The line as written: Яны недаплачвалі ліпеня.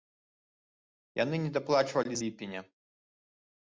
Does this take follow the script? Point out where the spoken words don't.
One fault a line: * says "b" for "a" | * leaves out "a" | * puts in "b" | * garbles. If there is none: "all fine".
all fine